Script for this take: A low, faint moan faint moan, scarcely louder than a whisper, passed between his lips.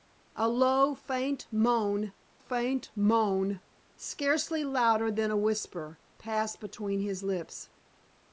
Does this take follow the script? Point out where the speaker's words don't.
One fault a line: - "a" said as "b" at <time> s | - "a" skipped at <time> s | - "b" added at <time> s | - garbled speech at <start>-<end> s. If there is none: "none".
none